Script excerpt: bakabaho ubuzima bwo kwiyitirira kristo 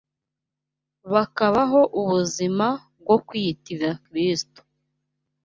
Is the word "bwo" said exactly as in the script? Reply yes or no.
yes